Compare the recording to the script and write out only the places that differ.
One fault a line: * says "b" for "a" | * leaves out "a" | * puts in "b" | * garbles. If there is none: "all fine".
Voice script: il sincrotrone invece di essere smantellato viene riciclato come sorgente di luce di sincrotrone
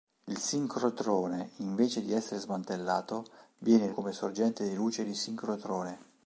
* leaves out "riciclato"